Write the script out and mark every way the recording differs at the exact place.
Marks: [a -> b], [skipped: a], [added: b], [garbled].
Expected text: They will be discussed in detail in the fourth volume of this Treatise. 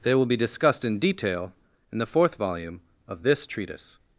They will be discussed in detail in the fourth volume of this Treatise.